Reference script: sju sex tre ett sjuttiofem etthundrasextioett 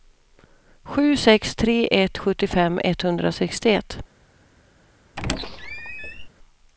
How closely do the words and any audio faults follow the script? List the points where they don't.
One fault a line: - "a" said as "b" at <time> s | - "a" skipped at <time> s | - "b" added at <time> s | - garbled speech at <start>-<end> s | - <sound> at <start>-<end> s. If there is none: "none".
- squeak at 5.2-6.3 s